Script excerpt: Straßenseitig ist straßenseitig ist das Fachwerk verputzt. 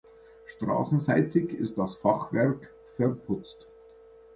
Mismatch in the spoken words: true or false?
true